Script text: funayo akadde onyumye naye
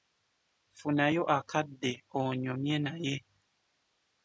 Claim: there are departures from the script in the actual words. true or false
false